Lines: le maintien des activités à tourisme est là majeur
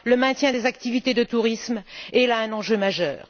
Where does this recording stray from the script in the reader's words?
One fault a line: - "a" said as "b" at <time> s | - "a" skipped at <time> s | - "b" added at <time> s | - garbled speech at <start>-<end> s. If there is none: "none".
- "à" said as "de" at 1.1 s
- "un enjeu" added at 2.4 s